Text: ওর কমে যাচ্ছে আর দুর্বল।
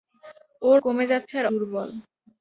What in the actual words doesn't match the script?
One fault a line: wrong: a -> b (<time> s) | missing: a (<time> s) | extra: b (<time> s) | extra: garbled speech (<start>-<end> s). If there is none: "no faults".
no faults